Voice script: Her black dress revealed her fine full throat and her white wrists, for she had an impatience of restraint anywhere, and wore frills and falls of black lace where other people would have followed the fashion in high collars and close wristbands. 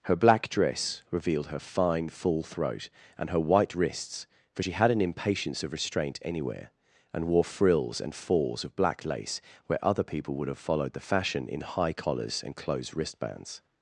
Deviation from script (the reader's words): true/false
true